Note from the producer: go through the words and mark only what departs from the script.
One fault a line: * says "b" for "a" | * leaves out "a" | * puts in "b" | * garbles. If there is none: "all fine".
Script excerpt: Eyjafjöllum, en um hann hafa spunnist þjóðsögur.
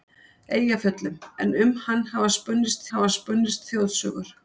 * puts in "hafa spunnist"